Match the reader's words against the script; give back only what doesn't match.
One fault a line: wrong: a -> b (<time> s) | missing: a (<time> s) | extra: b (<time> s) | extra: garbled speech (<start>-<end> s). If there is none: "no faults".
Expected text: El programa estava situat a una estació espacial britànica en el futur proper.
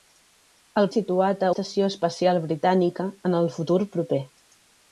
missing: programa estava (0.9 s)
missing: una (1.5 s)